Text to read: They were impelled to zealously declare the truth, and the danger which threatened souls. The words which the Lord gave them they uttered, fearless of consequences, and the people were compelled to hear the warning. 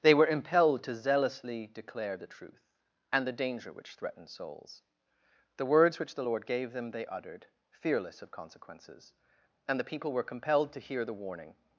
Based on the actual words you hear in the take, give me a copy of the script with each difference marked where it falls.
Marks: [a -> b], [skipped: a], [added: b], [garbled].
They were impelled to zealously declare the truth, and the danger which threatened souls. The words which the Lord gave them they uttered, fearless of consequences, and the people were compelled to hear the warning.